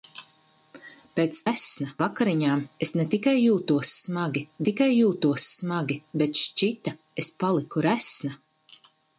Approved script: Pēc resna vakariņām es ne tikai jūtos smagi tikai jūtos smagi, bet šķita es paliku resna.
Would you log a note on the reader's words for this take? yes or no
no